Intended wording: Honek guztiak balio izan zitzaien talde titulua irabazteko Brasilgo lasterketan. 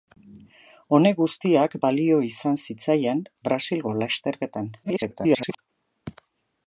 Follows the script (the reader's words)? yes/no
no